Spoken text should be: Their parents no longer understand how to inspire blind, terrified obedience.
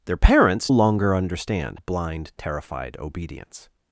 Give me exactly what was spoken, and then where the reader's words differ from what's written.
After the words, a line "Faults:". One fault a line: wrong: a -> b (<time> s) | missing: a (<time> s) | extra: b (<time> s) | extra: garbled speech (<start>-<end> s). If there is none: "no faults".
Their parents longer understand blind, terrified obedience.
Faults:
missing: no (0.7 s)
missing: how to inspire (1.8 s)